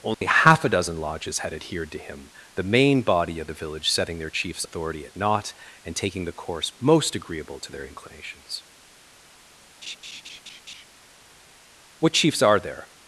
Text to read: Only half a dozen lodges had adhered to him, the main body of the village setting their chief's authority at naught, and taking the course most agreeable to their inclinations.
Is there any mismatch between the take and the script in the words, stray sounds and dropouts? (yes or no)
yes